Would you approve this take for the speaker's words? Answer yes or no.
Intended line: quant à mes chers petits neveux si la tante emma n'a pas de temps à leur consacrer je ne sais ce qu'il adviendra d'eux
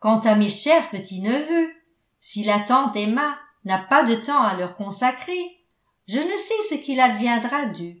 yes